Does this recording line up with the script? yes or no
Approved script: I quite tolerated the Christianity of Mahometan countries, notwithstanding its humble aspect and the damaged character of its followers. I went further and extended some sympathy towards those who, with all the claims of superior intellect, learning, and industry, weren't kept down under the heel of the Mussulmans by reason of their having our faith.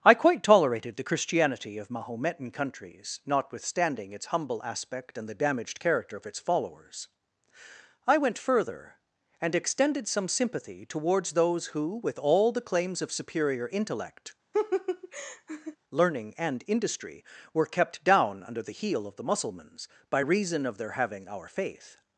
no